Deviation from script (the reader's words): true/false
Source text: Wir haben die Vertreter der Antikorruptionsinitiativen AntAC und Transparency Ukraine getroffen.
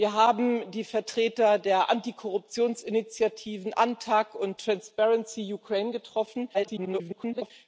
true